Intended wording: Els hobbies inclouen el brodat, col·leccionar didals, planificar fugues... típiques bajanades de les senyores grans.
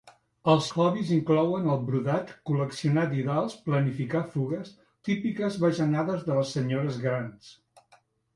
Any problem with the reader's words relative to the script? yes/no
no